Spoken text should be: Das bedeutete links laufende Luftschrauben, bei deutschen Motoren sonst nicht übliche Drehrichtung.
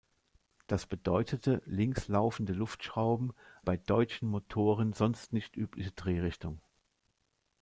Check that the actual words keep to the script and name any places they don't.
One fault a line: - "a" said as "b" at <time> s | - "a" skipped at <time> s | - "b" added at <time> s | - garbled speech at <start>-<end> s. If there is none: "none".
none